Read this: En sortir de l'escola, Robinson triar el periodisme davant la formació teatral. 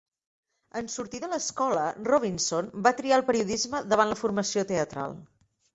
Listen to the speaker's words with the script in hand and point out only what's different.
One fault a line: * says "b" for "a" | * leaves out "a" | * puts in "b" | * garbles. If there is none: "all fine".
* puts in "va"